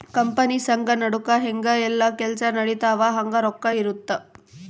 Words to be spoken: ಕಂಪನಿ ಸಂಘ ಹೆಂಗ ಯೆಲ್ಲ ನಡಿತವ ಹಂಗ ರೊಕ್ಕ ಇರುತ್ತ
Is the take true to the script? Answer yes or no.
no